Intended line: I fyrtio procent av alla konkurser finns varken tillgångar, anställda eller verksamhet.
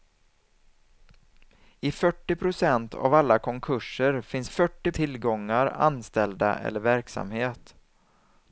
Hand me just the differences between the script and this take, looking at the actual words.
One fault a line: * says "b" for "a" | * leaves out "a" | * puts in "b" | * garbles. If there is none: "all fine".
* says "fyrtio" for "varken"